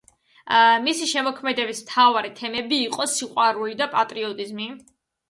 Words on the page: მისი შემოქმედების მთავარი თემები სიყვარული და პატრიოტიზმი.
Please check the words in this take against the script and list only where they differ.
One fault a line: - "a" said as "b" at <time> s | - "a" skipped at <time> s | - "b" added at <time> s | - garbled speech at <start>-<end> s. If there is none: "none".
- "იყო" added at 2.8 s